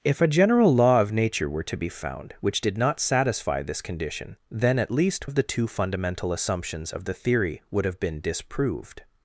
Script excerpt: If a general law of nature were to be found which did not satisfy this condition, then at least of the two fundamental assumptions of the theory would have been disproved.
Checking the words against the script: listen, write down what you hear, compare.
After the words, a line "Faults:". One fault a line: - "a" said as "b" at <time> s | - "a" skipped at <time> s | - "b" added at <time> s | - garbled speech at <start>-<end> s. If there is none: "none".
If a general law of nature were to be found which did not satisfy this condition, then at least of the two fundamental assumptions of the theory would have been disproved.
Faults:
none